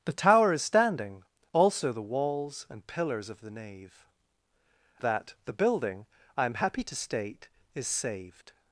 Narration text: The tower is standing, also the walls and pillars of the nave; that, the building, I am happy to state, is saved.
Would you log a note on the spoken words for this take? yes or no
no